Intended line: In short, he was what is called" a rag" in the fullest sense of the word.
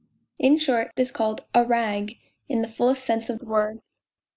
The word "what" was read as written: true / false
false